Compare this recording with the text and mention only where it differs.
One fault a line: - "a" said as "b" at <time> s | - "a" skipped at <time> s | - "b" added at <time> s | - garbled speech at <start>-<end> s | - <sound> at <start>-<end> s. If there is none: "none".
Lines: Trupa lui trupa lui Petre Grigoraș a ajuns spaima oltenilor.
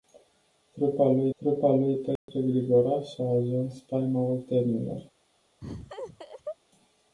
- dropout at 2.2-2.3 s
- laugh at 5.6-6.6 s